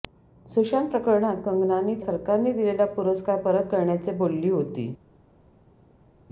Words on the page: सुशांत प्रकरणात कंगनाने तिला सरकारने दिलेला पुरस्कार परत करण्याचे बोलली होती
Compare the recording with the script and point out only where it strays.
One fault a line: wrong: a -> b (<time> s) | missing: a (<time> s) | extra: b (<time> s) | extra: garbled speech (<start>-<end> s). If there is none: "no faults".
missing: तिला (1.9 s)